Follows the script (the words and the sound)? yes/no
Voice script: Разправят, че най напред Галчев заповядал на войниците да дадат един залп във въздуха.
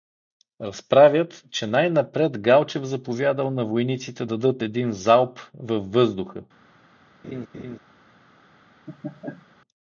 no